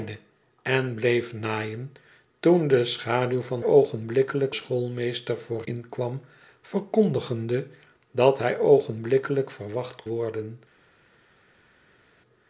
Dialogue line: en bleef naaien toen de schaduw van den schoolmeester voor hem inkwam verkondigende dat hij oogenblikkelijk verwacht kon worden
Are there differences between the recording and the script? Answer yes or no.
yes